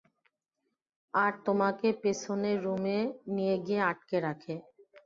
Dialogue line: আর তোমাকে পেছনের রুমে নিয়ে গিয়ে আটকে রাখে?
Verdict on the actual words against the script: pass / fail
pass